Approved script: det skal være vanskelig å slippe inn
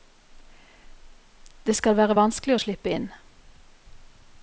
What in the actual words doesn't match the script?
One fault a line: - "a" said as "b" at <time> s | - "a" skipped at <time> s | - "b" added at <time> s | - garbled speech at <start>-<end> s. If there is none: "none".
none